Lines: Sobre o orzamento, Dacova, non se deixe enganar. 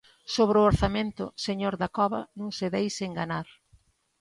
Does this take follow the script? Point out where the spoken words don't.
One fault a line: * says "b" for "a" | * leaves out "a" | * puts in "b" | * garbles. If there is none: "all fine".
* puts in "señor"